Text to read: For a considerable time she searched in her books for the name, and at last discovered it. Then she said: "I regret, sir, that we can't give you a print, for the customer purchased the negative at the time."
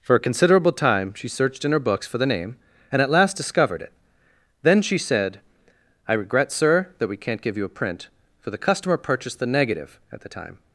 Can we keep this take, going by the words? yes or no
yes